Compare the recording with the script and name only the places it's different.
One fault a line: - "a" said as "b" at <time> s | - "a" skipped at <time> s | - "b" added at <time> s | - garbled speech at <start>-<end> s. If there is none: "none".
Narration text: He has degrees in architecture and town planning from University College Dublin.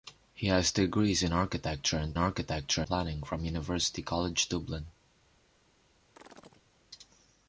- "town" said as "architecture" at 2.2 s